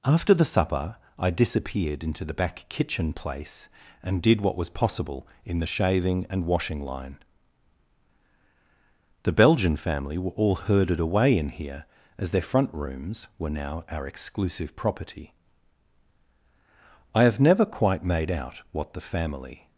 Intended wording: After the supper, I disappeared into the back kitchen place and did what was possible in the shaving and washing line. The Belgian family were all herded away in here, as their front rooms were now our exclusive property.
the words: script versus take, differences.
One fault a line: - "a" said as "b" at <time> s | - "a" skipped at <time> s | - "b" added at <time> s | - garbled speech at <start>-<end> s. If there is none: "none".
- "I have never quite made out what the family" added at 17.1 s